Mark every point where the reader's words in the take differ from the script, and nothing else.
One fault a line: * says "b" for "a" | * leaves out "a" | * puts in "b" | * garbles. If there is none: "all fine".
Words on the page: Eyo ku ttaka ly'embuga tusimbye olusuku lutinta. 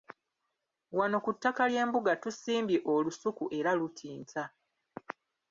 * says "Wano" for "Eyo"
* puts in "era"